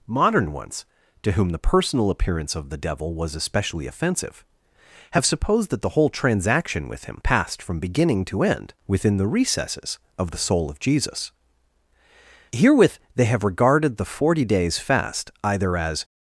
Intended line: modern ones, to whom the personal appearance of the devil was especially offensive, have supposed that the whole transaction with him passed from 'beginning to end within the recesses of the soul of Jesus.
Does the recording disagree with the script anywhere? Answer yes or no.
yes